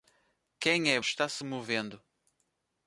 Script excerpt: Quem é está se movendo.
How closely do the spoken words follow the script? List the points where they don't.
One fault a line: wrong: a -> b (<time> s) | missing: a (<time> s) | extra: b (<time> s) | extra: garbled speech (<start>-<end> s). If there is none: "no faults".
no faults